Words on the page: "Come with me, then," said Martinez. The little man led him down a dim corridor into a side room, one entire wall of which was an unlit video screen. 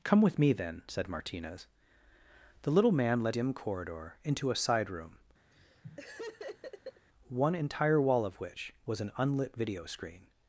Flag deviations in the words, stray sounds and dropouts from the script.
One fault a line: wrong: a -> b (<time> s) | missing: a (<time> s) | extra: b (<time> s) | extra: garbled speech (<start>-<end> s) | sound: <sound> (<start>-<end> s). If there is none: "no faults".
missing: him down a (3.4 s)
sound: laugh (5.5-7.1 s)